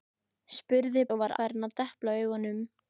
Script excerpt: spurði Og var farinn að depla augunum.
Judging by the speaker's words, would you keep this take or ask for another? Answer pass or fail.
pass